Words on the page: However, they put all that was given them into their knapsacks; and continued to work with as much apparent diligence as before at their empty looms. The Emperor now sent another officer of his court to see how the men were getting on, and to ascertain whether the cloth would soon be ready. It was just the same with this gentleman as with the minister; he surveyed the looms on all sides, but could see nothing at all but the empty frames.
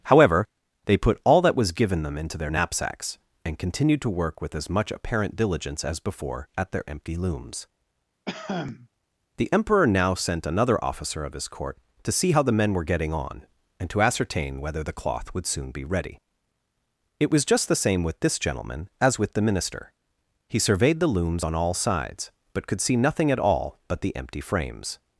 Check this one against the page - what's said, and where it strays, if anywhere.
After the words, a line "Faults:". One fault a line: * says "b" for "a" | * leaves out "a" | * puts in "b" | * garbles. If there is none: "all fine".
However, they put all that was given them into their knapsacks; and continued to work with as much apparent diligence as before at their empty looms. The Emperor now sent another officer of his court to see how the men were getting on, and to ascertain whether the cloth would soon be ready. It was just the same with this gentleman as with the minister; he surveyed the looms on all sides, but could see nothing at all but the empty frames.
Faults:
all fine